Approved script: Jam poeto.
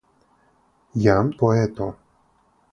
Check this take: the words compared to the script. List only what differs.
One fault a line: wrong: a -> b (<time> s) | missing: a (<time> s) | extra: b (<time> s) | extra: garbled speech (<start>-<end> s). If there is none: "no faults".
no faults